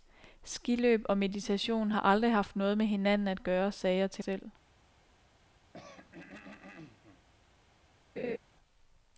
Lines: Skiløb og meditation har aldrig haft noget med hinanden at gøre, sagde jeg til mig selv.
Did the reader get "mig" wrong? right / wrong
wrong